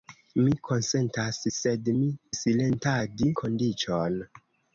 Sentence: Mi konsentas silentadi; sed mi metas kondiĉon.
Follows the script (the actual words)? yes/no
no